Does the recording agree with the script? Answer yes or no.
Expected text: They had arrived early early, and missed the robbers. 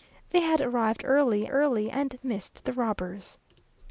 yes